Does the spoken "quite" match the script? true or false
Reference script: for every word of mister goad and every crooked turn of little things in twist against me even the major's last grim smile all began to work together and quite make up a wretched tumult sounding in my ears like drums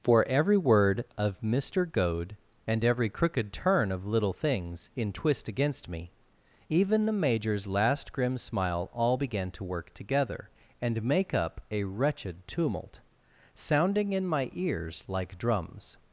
false